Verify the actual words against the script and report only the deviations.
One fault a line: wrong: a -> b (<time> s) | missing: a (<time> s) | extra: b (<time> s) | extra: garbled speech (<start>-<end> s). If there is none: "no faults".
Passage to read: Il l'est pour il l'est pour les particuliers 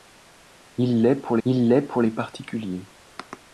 no faults